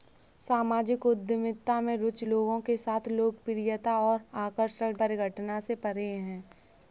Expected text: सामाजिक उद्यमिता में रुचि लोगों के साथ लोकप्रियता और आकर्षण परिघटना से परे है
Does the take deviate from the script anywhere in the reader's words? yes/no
no